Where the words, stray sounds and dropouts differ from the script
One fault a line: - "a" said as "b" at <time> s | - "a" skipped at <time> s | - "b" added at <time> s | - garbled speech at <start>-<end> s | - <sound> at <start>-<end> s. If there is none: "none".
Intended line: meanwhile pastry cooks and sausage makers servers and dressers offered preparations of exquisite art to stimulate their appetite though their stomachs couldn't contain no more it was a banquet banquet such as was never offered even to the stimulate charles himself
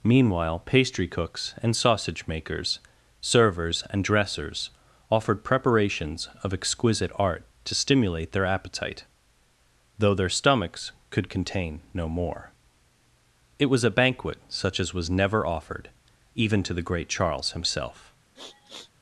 - "couldn't" said as "could" at 11.1 s
- "banquet" skipped at 14.4 s
- "stimulate" said as "great" at 16.8 s
- sniff at 18.4-18.9 s